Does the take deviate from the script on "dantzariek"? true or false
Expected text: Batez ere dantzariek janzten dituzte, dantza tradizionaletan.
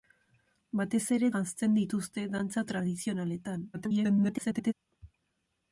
true